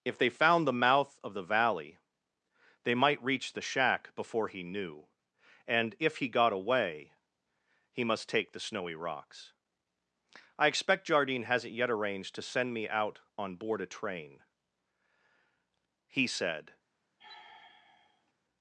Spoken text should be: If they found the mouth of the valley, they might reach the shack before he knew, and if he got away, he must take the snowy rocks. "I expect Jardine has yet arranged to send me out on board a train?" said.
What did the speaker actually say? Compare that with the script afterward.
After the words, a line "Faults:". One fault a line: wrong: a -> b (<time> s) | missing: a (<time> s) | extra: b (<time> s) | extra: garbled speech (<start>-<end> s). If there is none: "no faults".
If they found the mouth of the valley, they might reach the shack before he knew, and if he got away, he must take the snowy rocks. "I expect Jardine hasn't yet arranged to send me out on board a train?" he said.
Faults:
wrong: has -> hasn't (11.4 s)
extra: he (16.1 s)